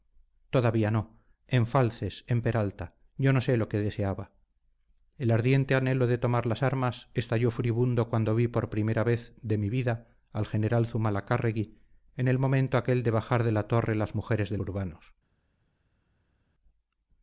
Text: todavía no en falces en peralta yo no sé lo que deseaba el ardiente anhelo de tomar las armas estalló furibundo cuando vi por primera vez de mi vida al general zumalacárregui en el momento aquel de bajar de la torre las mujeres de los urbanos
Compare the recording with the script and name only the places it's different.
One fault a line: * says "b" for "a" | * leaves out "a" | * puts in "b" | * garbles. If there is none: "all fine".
* leaves out "los"